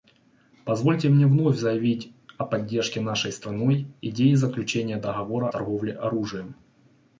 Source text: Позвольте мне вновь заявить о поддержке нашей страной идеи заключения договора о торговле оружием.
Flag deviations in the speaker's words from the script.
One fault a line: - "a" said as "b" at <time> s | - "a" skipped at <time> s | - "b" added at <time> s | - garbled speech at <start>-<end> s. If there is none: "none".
- "о" skipped at 5.5 s